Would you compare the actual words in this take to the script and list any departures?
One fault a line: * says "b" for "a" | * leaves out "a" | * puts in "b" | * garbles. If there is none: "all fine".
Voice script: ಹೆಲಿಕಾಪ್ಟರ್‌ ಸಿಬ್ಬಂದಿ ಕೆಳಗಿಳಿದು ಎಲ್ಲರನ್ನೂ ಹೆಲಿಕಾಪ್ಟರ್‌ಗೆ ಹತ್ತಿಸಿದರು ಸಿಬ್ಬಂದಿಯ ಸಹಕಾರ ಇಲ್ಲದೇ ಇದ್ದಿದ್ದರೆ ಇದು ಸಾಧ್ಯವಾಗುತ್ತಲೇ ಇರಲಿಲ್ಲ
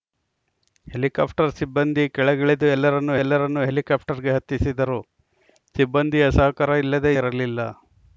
* puts in "ಎಲ್ಲರನ್ನೂ"
* leaves out "ಇದ್ದಿದ್ದರೆ ಇದು ಸಾಧ್ಯವಾಗುತ್ತಲೇ"